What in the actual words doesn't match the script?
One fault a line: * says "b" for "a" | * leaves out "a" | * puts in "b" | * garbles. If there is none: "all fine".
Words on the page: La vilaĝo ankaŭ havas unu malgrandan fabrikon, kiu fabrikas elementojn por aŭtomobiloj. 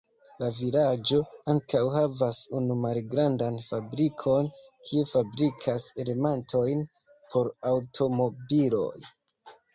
all fine